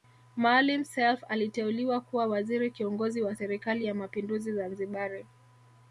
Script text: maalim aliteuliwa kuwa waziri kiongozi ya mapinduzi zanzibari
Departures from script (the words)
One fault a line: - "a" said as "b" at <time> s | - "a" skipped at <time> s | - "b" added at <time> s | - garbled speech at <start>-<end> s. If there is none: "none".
- "self" added at 0.8 s
- "wa serikali" added at 3.2 s